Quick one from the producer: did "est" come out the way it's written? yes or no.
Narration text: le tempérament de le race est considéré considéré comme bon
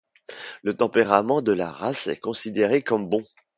yes